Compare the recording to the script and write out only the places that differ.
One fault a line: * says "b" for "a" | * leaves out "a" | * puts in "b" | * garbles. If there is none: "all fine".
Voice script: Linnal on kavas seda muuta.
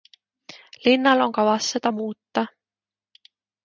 all fine